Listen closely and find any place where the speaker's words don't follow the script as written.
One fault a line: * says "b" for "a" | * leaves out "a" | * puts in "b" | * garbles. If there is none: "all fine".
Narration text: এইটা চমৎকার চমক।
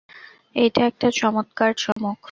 * puts in "একটা"